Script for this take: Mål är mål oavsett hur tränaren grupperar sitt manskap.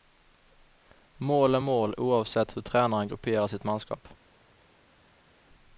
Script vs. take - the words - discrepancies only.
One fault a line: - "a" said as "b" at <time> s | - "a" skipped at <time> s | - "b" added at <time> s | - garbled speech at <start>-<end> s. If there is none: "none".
none